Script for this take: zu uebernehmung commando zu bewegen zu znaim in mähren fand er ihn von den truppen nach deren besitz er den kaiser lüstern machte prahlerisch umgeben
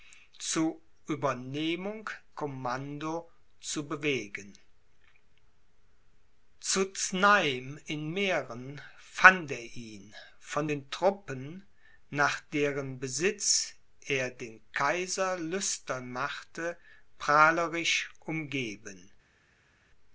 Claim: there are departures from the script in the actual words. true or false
false